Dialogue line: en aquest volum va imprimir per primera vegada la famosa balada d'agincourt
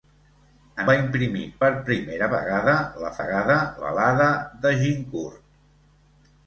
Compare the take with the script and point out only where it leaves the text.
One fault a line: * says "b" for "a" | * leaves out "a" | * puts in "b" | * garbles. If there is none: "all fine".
* leaves out "aquest volum"
* says "vegada" for "famosa"